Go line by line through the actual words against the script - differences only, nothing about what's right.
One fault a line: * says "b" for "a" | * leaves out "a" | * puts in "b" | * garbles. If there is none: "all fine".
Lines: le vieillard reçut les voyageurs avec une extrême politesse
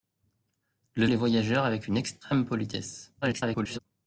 * leaves out "vieillard reçut"
* garbles